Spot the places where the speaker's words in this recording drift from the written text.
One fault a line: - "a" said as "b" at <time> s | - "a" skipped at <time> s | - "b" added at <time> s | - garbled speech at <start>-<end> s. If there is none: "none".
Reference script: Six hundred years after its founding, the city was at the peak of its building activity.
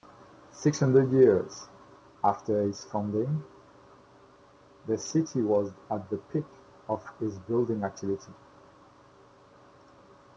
none